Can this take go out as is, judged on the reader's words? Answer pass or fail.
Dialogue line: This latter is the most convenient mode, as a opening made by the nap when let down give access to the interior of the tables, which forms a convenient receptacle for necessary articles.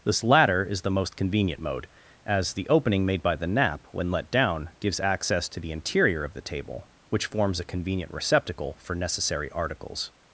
fail